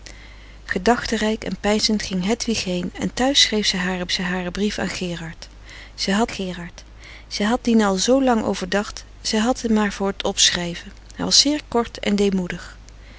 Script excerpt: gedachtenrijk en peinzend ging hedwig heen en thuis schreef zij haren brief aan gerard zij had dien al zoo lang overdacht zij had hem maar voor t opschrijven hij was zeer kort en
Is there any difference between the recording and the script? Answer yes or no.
yes